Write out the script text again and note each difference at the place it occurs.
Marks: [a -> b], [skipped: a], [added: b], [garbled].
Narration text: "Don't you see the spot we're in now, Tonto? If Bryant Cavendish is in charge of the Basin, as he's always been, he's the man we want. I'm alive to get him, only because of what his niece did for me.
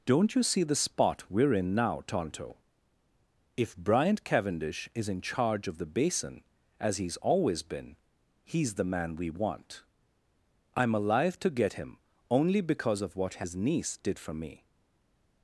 "Don't you see the spot we're in now, Tonto? If Bryant Cavendish is in charge of the Basin, as he's always been, he's the man we want. I'm alive to get him, only because of what his niece did for me.